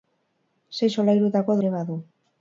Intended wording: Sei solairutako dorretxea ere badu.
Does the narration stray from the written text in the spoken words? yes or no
yes